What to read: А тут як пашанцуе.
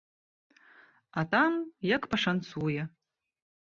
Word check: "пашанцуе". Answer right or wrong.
right